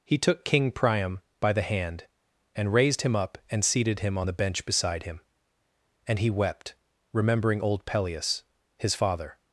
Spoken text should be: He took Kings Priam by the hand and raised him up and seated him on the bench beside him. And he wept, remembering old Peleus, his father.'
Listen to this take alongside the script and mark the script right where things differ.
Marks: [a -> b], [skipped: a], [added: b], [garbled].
He took [Kings -> King] Priam by the hand and raised him up and seated him on the bench beside him. And he wept, remembering old Peleus, his father.'